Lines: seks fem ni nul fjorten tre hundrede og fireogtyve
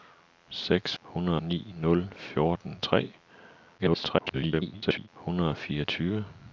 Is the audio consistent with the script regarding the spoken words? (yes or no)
no